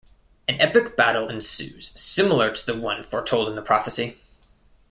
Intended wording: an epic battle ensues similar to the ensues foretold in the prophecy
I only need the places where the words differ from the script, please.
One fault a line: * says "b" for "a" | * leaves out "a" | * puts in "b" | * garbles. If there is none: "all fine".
* says "one" for "ensues"